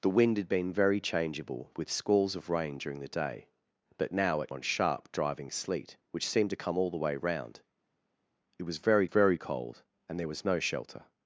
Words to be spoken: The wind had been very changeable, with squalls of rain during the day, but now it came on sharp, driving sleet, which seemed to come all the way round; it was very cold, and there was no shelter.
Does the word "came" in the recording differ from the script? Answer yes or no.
yes